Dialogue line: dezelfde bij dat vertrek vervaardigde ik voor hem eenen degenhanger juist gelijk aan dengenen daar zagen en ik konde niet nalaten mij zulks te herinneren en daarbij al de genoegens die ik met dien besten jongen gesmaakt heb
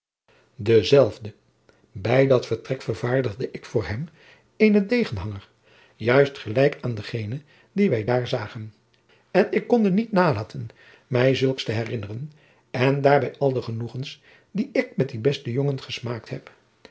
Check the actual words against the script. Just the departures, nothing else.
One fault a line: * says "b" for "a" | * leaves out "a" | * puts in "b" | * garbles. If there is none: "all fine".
* puts in "dien wij"